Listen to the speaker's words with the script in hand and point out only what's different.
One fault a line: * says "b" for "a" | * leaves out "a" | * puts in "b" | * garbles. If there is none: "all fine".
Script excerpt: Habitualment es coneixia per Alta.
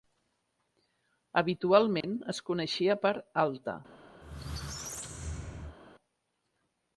all fine